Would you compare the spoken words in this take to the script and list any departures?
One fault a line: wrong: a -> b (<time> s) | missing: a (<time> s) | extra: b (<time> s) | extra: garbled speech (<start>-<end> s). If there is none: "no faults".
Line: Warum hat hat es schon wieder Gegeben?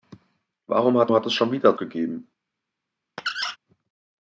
no faults